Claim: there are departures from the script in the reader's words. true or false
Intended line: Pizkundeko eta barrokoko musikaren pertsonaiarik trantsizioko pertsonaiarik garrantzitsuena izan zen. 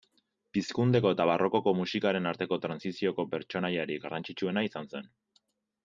true